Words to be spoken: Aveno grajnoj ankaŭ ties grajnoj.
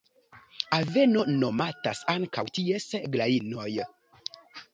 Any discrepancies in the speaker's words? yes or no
yes